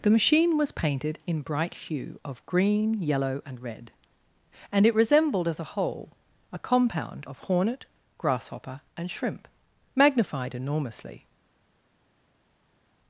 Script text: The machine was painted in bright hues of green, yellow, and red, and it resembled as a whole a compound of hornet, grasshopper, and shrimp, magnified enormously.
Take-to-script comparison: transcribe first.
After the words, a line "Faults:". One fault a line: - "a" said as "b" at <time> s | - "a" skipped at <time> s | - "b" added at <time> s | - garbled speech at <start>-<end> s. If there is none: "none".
The machine was painted in bright hue of green, yellow, and red, and it resembled as a whole a compound of hornet, grasshopper, and shrimp, magnified enormously.
Faults:
- "hues" said as "hue" at 1.8 s